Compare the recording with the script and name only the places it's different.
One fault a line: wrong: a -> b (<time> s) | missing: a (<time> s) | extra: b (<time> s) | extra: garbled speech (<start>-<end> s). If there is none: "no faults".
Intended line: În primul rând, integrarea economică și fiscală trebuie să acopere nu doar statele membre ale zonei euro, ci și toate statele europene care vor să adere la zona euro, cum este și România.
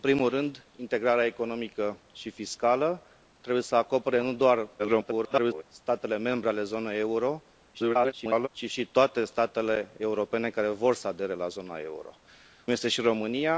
extra: garbled speech (4.8-5.6 s)
extra: garbled speech (7.7-8.5 s)
missing: cum (12.1 s)